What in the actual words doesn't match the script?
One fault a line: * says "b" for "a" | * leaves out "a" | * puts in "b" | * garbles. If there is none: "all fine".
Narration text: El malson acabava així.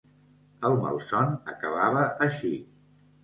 all fine